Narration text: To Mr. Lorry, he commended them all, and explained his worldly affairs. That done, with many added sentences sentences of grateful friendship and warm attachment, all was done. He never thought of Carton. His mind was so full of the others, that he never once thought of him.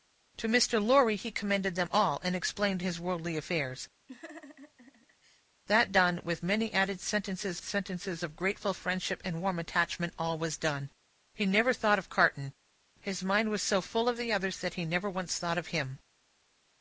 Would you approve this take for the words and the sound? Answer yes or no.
no